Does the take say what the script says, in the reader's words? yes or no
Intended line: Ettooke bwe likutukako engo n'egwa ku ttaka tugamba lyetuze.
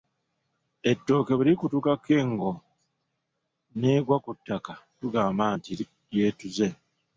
no